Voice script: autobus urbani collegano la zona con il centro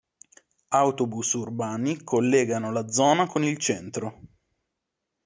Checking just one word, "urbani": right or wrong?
right